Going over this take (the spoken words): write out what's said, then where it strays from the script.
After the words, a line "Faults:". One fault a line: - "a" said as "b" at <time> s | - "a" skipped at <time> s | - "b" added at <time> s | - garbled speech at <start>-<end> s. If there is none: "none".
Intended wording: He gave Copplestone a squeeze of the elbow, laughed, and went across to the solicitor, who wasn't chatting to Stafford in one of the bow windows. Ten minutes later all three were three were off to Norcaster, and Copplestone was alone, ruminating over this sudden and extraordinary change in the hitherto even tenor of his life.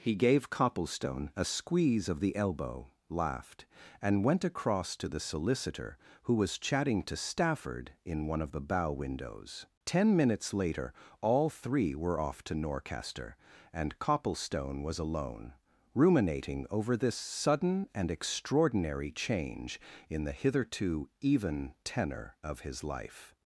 He gave Copplestone a squeeze of the elbow, laughed, and went across to the solicitor, who was chatting to Stafford in one of the bow windows. Ten minutes later all three were off to Norcaster, and Copplestone was alone, ruminating over this sudden and extraordinary change in the hitherto even tenor of his life.
Faults:
- "wasn't" said as "was" at 6.3 s
- "three were" skipped at 12.2 s